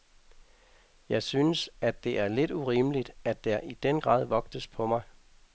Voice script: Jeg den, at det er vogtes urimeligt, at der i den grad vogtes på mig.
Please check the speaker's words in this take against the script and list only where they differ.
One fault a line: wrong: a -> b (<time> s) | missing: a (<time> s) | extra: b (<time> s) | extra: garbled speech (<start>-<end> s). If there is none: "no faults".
wrong: den -> synes (1.2 s)
wrong: vogtes -> lidt (2.3 s)